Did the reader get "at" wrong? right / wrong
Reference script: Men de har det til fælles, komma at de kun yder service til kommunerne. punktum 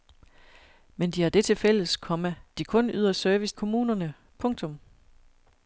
wrong